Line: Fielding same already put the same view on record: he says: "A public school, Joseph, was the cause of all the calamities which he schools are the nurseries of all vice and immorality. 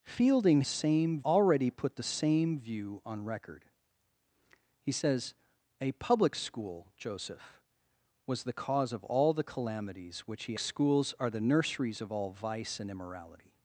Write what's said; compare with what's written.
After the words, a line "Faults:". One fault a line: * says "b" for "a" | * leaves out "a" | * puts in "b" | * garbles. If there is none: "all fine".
Fielding same already put the same view on record: he says: "A public school, Joseph, was the cause of all the calamities which he schools are the nurseries of all vice and immorality.
Faults:
all fine